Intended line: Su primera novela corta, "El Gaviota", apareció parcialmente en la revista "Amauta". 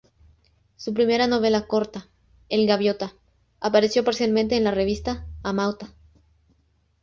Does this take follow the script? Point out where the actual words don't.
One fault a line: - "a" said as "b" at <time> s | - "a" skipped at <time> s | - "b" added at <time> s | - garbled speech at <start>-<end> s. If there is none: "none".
none